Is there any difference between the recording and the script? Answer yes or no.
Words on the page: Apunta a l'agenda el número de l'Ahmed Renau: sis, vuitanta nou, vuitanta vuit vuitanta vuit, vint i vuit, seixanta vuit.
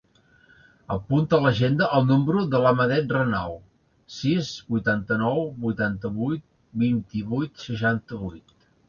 yes